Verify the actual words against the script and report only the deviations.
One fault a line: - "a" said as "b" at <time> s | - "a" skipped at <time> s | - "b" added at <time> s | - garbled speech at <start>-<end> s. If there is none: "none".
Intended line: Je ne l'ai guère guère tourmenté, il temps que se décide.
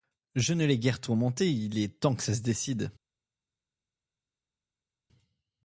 - "guère" skipped at 1.0 s
- "est" added at 1.8 s
- "ça" added at 2.2 s